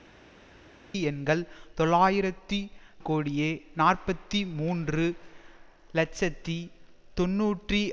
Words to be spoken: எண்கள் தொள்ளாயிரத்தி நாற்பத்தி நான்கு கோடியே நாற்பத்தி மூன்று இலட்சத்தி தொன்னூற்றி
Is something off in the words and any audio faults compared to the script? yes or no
yes